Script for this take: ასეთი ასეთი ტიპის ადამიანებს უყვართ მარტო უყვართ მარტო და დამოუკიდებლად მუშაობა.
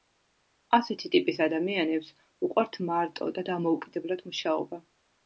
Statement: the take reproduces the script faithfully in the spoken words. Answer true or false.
false